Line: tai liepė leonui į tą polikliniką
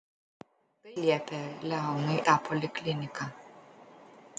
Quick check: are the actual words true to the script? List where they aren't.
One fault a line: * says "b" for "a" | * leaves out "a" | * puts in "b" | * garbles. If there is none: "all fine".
all fine